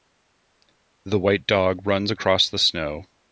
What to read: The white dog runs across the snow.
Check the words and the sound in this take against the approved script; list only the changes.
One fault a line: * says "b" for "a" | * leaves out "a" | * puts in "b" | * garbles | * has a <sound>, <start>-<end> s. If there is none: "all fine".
all fine